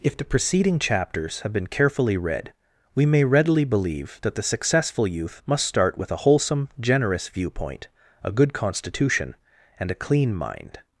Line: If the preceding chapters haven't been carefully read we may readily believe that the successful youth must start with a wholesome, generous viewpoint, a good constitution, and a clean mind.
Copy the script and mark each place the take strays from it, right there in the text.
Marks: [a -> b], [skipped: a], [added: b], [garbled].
If the preceding chapters [haven't -> have] been carefully read we may readily believe that the successful youth must start with a wholesome, generous viewpoint, a good constitution, and a clean mind.